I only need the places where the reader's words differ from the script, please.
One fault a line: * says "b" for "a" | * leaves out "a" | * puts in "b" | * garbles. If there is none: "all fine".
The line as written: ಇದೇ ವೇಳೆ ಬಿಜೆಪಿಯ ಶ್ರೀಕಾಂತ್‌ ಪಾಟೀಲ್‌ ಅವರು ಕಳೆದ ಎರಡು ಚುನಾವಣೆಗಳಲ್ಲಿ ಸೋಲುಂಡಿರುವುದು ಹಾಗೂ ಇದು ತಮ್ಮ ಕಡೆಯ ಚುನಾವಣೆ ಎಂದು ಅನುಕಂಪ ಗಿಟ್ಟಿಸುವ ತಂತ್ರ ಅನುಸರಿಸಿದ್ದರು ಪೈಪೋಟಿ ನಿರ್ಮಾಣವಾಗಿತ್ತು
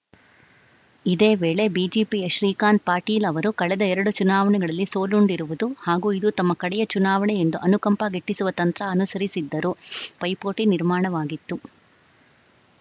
all fine